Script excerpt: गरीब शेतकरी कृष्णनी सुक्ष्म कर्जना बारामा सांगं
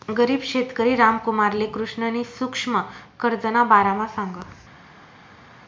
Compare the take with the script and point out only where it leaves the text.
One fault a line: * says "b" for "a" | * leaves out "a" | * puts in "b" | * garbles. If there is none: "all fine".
* puts in "रामकुमारले"